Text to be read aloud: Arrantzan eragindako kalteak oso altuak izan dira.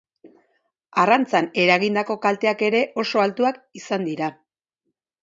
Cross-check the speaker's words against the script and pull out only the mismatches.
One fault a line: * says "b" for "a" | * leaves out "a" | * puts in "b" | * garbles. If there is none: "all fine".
* puts in "ere"